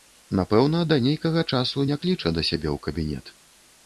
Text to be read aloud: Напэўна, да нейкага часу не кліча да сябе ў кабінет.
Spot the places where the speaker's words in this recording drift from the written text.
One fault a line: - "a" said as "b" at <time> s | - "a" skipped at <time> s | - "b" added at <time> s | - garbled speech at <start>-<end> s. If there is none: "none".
none